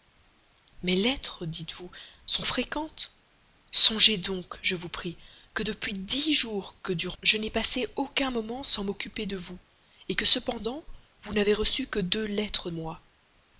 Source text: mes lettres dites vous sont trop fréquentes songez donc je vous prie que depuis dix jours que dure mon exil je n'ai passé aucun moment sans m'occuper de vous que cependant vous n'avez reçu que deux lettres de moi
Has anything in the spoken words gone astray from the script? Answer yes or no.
yes